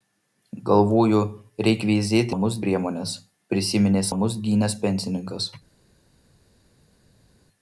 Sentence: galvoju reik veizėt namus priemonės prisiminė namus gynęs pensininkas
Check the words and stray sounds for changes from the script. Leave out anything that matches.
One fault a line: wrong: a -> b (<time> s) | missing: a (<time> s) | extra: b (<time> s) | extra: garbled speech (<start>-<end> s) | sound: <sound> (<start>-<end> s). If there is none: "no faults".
no faults